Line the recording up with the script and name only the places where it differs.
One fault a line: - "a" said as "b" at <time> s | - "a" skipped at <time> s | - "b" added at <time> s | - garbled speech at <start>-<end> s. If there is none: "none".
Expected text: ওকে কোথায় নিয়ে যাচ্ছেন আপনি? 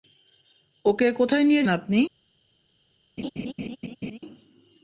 - "যাচ্ছেন" skipped at 1.7 s